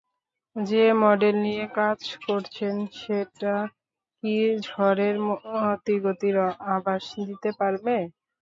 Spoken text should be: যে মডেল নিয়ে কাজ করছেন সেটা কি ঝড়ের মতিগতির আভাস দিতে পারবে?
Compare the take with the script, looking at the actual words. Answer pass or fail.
pass